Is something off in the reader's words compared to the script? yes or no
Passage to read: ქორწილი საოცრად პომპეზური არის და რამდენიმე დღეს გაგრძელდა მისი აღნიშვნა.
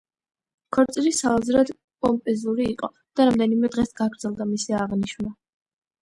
yes